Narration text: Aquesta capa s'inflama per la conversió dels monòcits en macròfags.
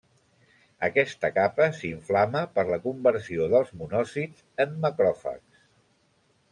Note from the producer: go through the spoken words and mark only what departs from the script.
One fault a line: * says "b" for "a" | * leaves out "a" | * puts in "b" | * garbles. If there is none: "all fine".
all fine